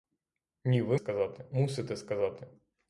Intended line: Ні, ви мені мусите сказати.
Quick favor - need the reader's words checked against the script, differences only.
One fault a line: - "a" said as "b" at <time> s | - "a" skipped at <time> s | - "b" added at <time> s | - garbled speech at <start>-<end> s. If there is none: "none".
- "мені" said as "сказати" at 0.9 s